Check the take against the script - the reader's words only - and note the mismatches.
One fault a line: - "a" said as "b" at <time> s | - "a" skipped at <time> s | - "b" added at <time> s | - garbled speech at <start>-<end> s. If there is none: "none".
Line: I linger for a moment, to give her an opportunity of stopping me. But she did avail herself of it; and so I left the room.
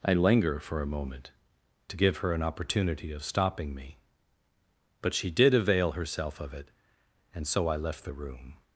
none